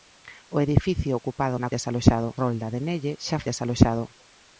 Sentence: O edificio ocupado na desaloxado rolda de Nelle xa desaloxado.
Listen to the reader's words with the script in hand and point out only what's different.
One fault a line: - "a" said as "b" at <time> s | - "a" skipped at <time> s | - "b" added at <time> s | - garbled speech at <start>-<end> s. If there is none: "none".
none